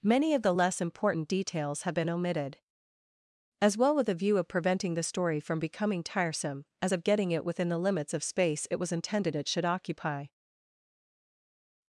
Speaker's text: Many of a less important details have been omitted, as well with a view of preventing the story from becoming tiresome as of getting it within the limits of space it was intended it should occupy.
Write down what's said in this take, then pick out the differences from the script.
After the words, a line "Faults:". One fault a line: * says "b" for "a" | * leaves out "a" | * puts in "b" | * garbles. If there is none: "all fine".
Many of the less important details have been omitted, as well with a view of preventing the story from becoming tiresome as of getting it within the limits of space it was intended it should occupy.
Faults:
* says "the" for "a"